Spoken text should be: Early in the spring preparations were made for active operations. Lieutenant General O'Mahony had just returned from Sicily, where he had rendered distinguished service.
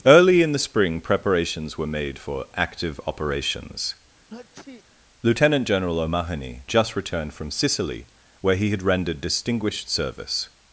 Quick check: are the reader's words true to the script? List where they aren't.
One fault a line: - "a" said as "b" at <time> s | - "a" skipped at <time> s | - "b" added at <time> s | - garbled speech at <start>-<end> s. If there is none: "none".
- "had" skipped at 6.6 s